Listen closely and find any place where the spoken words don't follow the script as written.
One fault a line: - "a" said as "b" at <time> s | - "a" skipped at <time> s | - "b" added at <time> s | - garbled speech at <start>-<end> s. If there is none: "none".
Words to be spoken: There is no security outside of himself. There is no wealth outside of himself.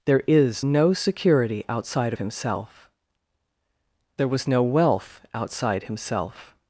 - "is" said as "was" at 4.3 s
- "of" skipped at 5.8 s